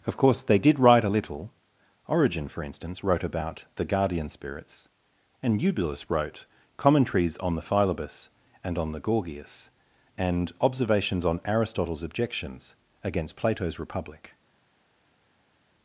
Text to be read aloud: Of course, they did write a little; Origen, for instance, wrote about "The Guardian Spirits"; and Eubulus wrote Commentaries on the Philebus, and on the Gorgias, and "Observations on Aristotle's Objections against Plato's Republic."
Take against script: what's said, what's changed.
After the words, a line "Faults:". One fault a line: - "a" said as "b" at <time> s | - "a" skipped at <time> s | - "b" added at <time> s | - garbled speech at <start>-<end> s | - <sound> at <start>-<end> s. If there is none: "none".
Of course, they did write a little; Origen, for instance, wrote about "The Guardian Spirits"; and Eubulus wrote Commentaries on the Philebus, and on the Gorgias, and "Observations on Aristotle's Objections against Plato's Republic."
Faults:
none